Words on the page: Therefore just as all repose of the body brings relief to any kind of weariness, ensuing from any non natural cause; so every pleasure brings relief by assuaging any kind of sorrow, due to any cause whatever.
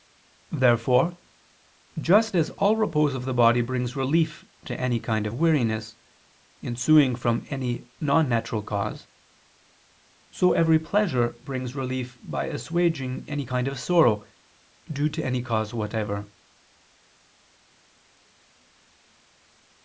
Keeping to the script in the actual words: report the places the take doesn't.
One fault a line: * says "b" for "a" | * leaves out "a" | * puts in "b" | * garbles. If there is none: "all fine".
all fine